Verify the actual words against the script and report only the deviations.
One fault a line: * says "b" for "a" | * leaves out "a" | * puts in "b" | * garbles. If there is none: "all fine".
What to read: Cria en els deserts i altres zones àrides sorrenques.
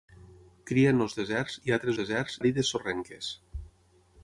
* says "deserts" for "zones"